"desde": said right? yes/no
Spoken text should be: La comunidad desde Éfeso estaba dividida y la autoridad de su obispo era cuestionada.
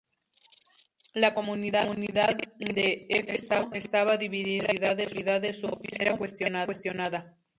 no